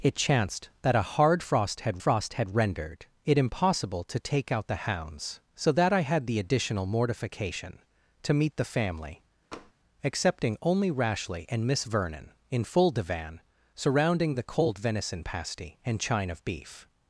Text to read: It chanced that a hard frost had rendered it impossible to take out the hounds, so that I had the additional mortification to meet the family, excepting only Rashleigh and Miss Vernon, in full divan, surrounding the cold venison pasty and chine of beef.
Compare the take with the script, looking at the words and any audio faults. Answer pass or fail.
fail